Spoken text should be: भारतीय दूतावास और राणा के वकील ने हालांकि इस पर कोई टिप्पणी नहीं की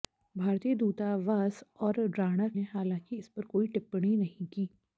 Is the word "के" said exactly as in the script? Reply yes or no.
no